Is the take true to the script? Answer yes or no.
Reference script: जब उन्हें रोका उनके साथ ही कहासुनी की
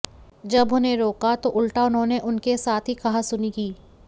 no